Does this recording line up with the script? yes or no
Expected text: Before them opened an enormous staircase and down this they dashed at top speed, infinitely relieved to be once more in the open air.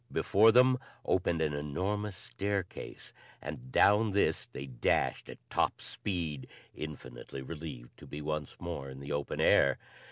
yes